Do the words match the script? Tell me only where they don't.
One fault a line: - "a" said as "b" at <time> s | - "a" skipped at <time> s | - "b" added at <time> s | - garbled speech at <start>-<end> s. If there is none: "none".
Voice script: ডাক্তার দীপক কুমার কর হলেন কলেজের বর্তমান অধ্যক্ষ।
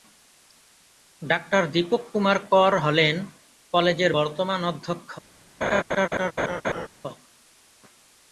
none